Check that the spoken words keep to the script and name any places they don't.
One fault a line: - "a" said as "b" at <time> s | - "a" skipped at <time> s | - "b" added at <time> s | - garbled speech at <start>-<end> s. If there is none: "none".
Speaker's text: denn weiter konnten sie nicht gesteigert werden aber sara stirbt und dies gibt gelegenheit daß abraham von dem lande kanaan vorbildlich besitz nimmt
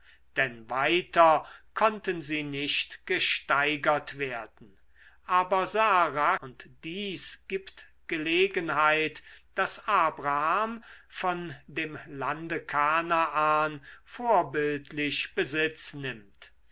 - "stirbt" skipped at 6.4 s